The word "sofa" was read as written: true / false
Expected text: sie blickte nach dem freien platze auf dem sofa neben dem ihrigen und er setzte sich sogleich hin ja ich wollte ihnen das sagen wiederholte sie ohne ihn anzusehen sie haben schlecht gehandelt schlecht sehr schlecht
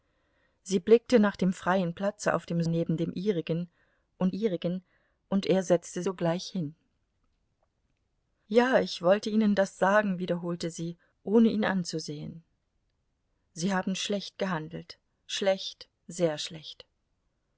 false